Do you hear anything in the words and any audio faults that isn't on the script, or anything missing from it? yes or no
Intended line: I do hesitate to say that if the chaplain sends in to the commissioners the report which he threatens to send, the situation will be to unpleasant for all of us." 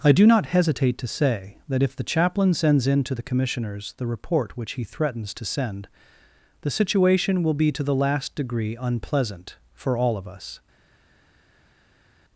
yes